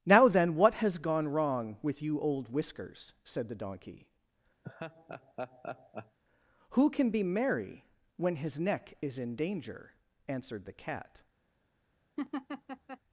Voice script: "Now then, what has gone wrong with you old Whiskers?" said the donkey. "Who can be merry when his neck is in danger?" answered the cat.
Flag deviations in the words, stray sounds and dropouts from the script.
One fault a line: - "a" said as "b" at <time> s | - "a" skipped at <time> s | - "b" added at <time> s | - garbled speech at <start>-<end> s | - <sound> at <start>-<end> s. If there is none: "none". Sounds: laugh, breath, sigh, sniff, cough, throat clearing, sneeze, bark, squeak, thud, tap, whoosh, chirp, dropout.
- laugh at 4.6-6.2 s
- laugh at 12.2-13.0 s